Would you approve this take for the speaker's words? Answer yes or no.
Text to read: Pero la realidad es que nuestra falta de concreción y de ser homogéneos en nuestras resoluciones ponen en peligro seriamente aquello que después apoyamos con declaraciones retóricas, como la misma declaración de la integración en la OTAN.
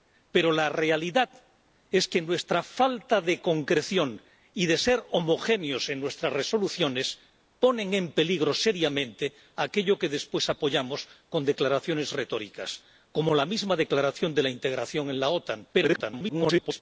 no